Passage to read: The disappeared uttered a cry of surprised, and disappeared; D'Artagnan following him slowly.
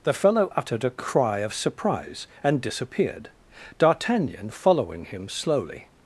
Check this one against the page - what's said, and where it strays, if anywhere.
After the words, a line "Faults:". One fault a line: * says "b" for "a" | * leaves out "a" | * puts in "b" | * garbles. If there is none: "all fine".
The fellow uttered a cry of surprise, and disappeared; D'Artagnan following him slowly.
Faults:
* says "fellow" for "disappeared"
* says "surprise" for "surprised"